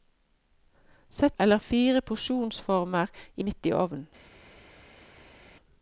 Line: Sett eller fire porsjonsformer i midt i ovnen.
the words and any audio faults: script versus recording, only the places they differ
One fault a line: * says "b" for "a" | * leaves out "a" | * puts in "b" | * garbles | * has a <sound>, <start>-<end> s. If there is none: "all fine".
all fine